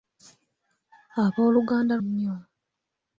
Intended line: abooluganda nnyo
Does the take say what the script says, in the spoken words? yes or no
yes